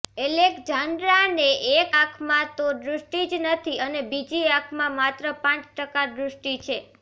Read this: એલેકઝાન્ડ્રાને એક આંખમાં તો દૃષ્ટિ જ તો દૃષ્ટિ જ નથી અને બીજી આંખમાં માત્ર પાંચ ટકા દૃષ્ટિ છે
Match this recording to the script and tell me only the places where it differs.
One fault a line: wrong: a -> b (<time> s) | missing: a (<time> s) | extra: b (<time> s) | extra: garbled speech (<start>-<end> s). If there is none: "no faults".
missing: તો દૃષ્ટિ જ (3.4 s)